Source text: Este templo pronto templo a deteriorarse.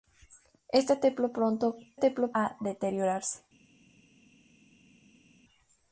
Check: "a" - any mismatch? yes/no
no